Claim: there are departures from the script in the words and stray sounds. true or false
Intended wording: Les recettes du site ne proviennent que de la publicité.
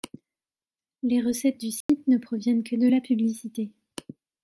true